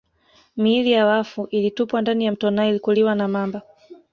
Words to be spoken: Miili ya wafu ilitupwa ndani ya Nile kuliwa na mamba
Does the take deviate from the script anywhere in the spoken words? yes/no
yes